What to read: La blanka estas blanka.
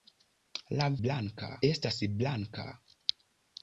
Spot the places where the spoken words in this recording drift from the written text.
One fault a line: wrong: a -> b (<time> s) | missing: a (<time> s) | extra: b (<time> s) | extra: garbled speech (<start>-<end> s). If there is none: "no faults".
no faults